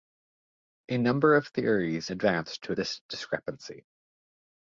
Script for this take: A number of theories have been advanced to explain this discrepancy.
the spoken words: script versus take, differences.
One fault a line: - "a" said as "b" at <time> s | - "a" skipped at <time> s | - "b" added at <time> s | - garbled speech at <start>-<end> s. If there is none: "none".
- "have been" skipped at 2.1 s
- "explain" skipped at 2.7 s